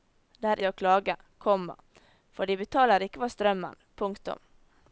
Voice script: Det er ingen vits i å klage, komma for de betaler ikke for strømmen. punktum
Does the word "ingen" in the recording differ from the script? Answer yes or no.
yes